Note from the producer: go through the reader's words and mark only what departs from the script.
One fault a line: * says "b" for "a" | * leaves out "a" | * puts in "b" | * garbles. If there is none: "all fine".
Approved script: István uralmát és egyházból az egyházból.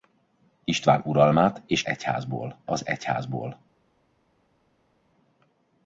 all fine